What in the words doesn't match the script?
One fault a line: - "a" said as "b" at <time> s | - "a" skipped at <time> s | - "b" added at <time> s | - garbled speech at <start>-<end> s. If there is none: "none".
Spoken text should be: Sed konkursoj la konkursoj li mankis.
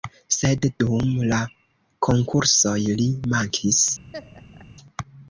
- "konkursoj" said as "dum" at 0.8 s